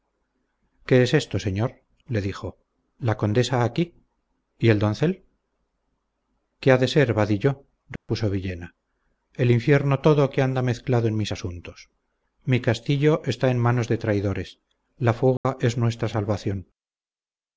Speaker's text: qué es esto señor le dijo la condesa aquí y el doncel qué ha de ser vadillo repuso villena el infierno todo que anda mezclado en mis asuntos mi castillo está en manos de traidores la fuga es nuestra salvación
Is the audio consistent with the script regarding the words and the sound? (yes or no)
no